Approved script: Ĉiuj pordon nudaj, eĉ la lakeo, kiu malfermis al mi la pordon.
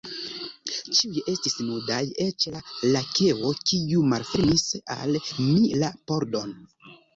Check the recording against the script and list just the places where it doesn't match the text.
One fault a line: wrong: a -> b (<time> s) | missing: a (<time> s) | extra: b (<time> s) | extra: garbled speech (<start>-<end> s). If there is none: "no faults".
wrong: pordon -> estis (1.3 s)